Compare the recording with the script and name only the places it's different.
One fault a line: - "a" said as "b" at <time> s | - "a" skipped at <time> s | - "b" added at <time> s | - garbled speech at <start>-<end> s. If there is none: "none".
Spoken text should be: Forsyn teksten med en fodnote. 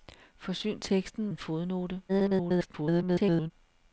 - "med" skipped at 1.3 s
- garbled speech at 2.1-3.5 s